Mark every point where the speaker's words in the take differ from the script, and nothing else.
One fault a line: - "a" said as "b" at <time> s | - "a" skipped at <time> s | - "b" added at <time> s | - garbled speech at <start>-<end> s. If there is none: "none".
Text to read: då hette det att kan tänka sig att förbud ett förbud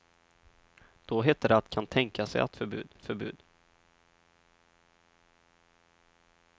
none